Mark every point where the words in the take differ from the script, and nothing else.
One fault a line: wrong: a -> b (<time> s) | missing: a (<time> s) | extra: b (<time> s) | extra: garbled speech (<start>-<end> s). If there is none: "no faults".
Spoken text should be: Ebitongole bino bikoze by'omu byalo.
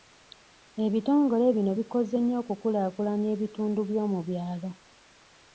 extra: nnyo okukulaakulanya ebitundu (2.2 s)